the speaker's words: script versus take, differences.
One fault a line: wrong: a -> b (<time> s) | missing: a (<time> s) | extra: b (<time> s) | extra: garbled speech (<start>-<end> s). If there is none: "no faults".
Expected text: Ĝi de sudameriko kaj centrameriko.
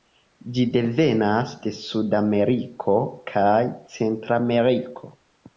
extra: devenas (0.8 s)